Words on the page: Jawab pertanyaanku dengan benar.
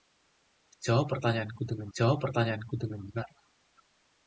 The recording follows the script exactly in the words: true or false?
false